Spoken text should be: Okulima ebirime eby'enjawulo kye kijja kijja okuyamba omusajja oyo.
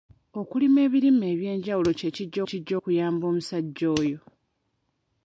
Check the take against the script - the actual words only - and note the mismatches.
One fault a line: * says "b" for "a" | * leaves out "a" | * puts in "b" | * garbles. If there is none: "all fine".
all fine